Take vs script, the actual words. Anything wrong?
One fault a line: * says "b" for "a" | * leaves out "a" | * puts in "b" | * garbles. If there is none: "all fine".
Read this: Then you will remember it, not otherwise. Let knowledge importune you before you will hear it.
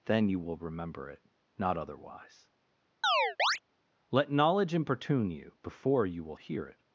all fine